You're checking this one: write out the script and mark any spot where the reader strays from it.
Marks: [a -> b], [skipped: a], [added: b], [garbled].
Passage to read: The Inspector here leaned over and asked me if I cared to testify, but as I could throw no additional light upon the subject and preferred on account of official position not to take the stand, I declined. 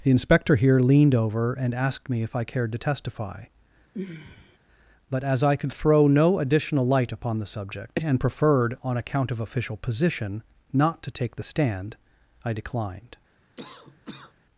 The Inspector here leaned over and asked me if I cared to testify, but as I could throw no additional light upon the subject and preferred on account of official position not to take the stand, I declined.